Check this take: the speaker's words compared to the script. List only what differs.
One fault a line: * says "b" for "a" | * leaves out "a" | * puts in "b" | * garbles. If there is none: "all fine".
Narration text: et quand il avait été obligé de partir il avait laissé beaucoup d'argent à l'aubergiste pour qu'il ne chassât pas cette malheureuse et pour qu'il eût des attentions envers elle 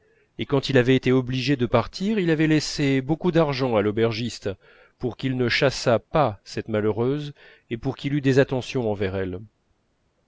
all fine